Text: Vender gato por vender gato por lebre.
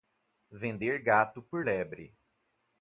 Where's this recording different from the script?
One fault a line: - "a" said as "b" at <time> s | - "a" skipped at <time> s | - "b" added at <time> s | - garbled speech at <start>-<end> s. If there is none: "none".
- "vender gato por" skipped at 1.7 s